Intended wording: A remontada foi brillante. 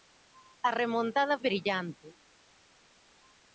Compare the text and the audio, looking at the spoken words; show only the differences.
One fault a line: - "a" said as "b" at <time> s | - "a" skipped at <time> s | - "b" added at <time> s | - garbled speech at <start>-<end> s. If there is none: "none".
- "foi" skipped at 1.4 s